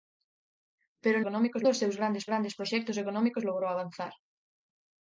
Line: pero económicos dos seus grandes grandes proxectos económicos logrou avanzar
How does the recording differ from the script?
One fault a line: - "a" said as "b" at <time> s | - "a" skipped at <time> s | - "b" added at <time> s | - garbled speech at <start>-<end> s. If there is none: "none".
none